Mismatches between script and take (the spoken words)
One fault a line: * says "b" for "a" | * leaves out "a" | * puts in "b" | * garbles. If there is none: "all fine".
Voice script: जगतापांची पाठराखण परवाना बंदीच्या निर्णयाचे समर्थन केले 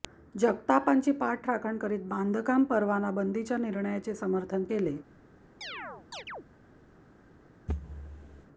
* puts in "करीत बांधकाम"